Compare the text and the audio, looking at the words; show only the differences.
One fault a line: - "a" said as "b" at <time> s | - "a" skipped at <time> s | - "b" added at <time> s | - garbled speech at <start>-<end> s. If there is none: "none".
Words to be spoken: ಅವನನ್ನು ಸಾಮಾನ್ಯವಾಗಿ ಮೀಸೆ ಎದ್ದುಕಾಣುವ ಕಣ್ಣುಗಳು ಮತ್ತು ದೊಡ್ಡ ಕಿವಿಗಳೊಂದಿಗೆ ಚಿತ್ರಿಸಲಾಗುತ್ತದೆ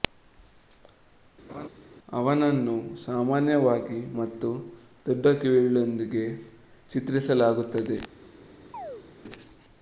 - "ಮೀಸೆ ಎದ್ದುಕಾಣುವ ಕಣ್ಣುಗಳು" skipped at 4.0 s